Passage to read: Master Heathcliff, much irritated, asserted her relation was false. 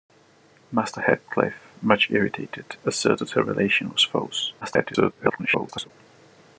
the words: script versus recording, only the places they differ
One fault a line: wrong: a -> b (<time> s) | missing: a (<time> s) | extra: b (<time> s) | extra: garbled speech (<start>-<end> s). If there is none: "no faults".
extra: garbled speech (4.6-5.9 s)